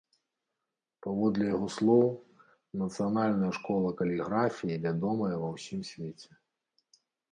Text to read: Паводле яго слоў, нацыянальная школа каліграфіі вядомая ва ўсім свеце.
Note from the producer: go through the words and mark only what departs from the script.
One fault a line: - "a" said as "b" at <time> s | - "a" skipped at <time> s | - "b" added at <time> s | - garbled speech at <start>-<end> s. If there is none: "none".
none